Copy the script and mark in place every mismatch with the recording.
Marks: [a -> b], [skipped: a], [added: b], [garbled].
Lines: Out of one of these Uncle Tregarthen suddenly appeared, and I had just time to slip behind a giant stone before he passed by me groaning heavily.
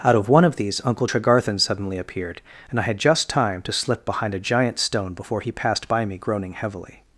Out of one of these Uncle Tregarthen suddenly appeared, and I had just time to slip behind a giant stone before he passed by me groaning heavily.